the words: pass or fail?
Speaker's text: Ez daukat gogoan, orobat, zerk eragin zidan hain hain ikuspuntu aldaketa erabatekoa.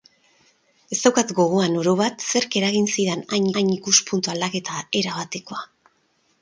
pass